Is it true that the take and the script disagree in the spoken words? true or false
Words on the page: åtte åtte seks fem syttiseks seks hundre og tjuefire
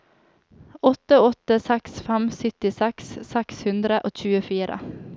false